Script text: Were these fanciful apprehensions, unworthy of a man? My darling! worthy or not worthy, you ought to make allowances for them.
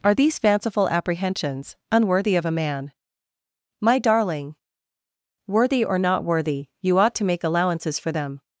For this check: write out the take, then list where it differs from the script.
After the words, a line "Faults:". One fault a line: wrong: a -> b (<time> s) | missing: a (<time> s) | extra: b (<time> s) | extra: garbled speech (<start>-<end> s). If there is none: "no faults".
Are these fanciful apprehensions, unworthy of a man? My darling! worthy or not worthy, you ought to make allowances for them.
Faults:
wrong: Were -> Are (0.0 s)